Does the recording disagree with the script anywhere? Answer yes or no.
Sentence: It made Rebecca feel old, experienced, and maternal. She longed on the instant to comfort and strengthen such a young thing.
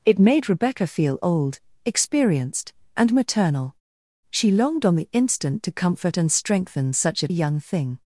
no